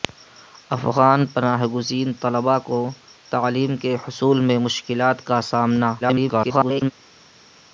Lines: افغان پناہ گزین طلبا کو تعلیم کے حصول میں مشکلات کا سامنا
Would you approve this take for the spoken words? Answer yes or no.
no